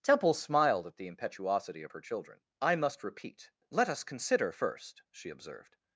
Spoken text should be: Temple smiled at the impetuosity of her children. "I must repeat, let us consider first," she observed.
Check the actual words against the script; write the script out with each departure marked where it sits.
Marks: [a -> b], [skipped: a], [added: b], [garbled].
Temple smiled at the impetuosity of her children. "I must repeat, let us consider first," she observed.